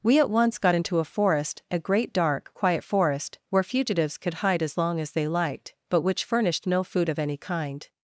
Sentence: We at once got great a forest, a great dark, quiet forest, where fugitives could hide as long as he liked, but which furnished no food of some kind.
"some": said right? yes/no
no